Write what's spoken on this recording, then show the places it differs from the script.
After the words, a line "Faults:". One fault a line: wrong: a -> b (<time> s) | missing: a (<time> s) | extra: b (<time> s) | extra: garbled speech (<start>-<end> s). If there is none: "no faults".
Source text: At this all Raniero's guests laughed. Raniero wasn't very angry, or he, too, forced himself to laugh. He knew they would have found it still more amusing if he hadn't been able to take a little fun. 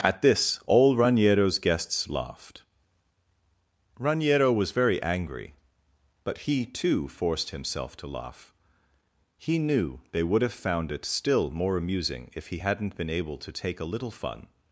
At this all Raniero's guests laughed. Raniero was very angry, but he, too, forced himself to laugh. He knew they would have found it still more amusing if he hadn't been able to take a little fun.
Faults:
wrong: wasn't -> was (4.5 s)
wrong: or -> but (6.2 s)